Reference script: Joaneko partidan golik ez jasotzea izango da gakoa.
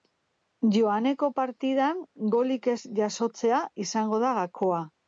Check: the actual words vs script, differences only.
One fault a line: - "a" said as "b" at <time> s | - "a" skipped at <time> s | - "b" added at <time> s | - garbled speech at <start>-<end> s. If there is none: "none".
none